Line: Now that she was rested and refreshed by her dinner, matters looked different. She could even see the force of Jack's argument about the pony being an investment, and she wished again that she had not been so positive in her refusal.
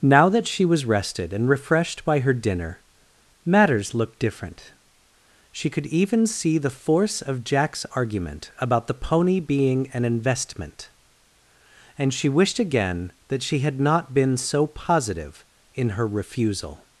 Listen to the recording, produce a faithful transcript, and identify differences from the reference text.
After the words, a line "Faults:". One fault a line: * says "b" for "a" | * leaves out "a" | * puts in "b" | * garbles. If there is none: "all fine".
Now that she was rested and refreshed by her dinner, matters looked different. She could even see the force of Jack's argument about the pony being an investment, and she wished again that she had not been so positive in her refusal.
Faults:
all fine